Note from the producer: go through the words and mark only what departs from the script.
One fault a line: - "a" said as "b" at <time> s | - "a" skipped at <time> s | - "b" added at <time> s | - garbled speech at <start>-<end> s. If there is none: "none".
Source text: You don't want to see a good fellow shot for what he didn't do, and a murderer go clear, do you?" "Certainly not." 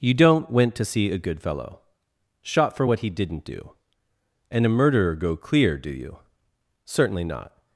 - "want" said as "went" at 0.5 s